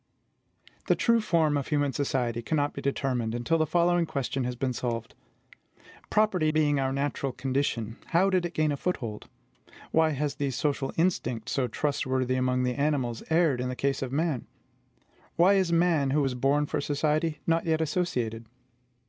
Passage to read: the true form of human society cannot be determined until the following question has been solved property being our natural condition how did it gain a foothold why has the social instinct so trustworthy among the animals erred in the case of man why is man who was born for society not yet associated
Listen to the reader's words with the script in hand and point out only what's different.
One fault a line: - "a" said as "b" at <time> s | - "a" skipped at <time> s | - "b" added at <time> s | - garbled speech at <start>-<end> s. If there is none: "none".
none